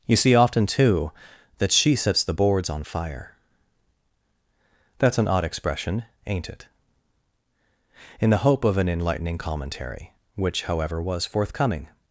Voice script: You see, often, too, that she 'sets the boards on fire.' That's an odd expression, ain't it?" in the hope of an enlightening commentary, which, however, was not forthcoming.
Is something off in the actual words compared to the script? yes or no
yes